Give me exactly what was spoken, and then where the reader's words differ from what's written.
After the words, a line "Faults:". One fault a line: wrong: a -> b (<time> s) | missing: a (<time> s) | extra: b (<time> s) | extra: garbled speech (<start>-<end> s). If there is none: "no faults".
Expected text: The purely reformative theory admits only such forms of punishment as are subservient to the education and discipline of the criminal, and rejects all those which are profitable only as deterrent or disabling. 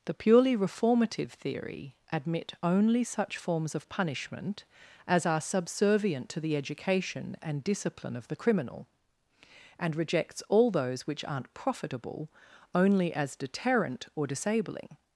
The purely reformative theory admit only such forms of punishment as are subservient to the education and discipline of the criminal, and rejects all those which aren't profitable only as deterrent or disabling.
Faults:
wrong: admits -> admit (2.1 s)
wrong: are -> aren't (11.2 s)